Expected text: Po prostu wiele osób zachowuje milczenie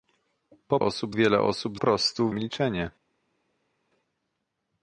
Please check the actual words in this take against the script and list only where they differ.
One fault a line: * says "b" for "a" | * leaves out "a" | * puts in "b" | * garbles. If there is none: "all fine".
* says "osób" for "prostu"
* says "prostu" for "zachowuje"